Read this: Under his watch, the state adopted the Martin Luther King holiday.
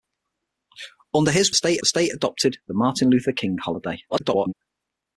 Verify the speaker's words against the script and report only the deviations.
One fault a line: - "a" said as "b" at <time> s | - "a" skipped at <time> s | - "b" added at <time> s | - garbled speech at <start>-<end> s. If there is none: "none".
- "watch" said as "state" at 1.5 s
- garbled speech at 4.1-4.5 s